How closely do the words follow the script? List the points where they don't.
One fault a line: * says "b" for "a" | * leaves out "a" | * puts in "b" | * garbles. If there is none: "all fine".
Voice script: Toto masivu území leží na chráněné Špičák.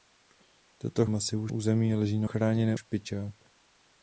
all fine